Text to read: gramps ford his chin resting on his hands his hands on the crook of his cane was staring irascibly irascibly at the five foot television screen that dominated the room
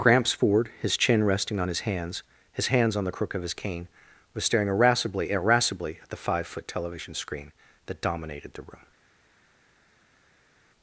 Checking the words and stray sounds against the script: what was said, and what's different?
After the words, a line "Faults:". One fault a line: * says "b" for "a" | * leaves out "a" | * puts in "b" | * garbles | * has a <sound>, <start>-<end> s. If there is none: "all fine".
gramps ford his chin resting on his hands his hands on the crook of his cane was staring irascibly irascibly at the five foot television screen that dominated the room
Faults:
all fine